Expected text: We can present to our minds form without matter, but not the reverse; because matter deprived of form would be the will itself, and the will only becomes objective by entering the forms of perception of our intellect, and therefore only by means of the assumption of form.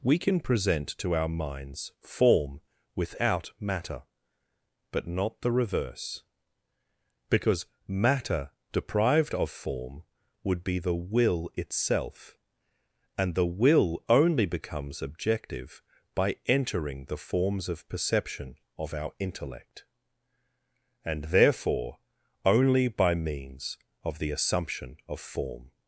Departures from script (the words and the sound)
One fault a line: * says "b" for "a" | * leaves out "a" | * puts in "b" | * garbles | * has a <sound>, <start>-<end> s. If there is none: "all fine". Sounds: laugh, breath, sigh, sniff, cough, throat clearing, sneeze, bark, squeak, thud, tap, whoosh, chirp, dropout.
all fine